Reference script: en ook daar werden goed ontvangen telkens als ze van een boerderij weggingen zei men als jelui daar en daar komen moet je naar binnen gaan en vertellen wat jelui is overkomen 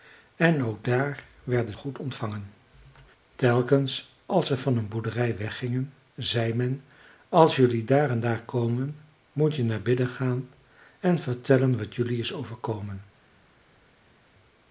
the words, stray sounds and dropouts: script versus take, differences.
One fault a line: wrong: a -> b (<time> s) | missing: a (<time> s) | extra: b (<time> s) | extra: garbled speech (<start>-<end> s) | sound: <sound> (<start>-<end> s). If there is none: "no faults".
no faults